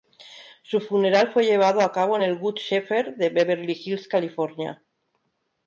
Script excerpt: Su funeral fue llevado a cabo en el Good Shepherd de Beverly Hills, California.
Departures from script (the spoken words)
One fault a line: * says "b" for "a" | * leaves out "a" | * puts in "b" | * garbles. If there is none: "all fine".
all fine